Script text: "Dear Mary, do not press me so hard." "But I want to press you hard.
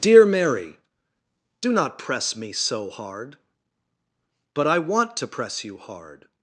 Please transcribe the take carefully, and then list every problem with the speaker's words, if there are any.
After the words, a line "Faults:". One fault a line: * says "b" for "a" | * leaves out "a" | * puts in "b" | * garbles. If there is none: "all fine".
"Dear Mary, do not press me so hard." "But I want to press you hard.
Faults:
all fine